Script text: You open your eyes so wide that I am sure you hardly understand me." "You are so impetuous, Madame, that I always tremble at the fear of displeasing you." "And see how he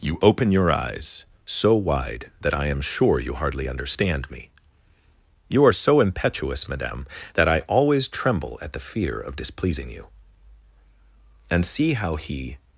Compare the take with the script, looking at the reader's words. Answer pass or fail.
pass